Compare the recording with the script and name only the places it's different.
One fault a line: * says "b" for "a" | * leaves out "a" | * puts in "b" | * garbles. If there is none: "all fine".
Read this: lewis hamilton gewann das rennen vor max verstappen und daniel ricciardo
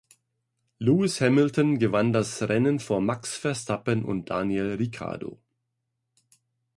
all fine